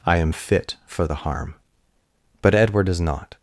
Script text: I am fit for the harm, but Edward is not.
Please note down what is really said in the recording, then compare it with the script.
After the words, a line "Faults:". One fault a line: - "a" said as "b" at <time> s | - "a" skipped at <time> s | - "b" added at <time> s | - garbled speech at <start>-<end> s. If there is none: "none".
I am fit for the harm, but Edward is not.
Faults:
none